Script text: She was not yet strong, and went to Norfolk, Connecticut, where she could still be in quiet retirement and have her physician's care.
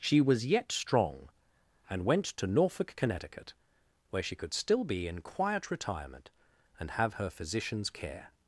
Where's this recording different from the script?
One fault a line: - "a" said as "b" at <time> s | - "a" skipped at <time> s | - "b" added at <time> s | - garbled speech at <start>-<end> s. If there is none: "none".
- "not" skipped at 0.5 s